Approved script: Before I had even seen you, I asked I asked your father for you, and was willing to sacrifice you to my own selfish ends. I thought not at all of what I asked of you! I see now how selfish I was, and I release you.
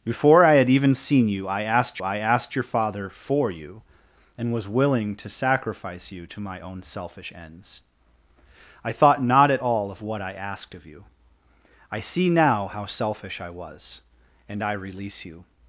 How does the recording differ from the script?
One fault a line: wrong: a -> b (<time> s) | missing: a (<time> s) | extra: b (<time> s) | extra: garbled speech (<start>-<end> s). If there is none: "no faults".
no faults